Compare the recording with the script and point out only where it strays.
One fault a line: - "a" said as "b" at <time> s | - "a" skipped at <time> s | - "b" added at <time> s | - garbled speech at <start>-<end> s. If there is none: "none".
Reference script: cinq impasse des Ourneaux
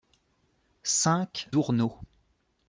- "impasse des" skipped at 1.5 s